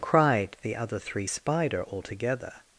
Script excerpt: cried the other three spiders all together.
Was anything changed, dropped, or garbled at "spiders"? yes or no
yes